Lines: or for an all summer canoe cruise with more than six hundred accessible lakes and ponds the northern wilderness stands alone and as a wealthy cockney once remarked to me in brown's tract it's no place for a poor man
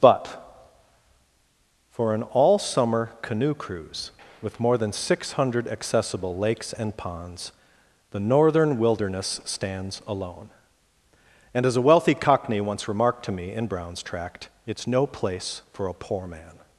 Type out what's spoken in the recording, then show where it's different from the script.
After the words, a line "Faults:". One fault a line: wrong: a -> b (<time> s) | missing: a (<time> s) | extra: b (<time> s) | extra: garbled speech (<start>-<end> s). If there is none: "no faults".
but for an all summer canoe cruise with more than six hundred accessible lakes and ponds the northern wilderness stands alone and as a wealthy cockney once remarked to me in brown's tract it's no place for a poor man
Faults:
wrong: or -> but (0.0 s)